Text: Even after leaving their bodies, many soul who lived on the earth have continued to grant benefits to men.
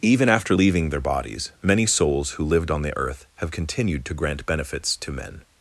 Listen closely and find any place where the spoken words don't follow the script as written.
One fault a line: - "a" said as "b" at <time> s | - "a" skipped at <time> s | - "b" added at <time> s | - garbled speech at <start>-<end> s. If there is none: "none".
- "soul" said as "souls" at 1.9 s